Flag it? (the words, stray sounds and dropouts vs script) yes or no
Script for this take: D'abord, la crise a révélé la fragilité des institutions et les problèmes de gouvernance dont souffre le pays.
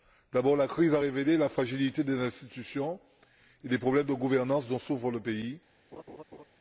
yes